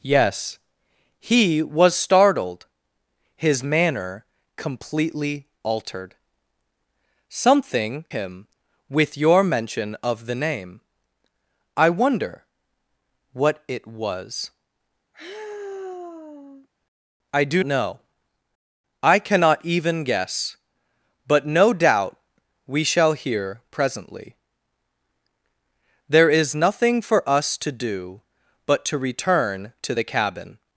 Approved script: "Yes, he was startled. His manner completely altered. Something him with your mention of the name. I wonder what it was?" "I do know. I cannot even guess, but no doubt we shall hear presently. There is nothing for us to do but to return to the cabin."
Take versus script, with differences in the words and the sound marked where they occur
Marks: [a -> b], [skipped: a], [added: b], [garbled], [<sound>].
"Yes, he was startled. His manner completely altered. Something him with your mention of the name. I wonder what it was?" [sigh] "I do know. I cannot even guess, but no doubt we shall hear presently. There is nothing for us to do but to return to the cabin."